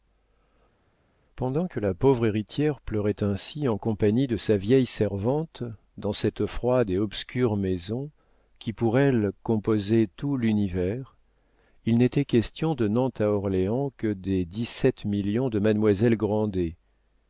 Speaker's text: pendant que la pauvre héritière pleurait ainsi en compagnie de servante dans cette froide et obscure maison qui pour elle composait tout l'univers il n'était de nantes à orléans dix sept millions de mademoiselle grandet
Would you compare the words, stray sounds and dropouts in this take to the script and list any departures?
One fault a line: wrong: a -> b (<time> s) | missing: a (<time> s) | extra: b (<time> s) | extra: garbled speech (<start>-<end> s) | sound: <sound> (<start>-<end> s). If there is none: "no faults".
extra: sa vieille (4.4 s)
extra: question (12.2 s)
extra: que des (14.0 s)